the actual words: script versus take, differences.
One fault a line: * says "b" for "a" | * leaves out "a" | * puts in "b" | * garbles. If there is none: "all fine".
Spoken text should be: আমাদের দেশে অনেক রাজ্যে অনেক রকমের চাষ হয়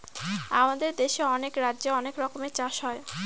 all fine